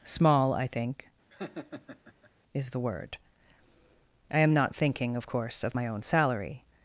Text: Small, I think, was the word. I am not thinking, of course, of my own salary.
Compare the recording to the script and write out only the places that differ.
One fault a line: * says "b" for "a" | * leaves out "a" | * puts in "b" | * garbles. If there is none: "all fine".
* says "is" for "was"